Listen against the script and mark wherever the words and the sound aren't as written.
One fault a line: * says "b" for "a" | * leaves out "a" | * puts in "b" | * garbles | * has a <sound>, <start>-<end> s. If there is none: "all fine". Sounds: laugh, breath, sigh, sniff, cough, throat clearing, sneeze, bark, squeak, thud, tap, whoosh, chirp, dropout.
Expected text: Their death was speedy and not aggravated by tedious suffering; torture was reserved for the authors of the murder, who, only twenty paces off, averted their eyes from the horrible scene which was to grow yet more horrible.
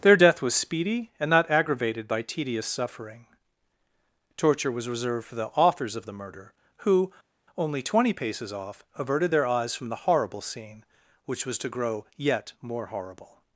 all fine